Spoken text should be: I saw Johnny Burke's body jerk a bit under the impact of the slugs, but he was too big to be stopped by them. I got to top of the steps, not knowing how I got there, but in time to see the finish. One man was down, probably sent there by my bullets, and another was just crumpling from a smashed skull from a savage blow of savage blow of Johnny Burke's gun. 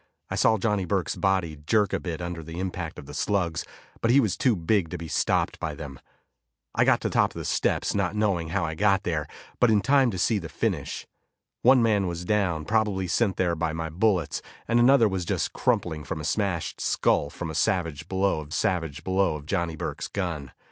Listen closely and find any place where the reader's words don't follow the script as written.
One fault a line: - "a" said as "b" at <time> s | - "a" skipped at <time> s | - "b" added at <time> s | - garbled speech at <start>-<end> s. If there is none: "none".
none